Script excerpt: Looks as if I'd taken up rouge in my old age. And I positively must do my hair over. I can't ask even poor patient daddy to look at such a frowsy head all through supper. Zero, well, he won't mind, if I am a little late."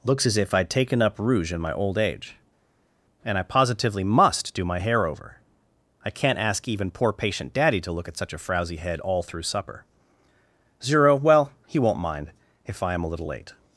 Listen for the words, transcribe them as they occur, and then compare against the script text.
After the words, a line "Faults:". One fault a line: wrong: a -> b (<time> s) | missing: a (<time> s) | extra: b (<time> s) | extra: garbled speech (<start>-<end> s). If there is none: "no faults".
Looks as if I'd taken up rouge in my old age. And I positively must do my hair over. I can't ask even poor patient daddy to look at such a frowsy head all through supper. Zero, well, he won't mind, if I am a little late."
Faults:
no faults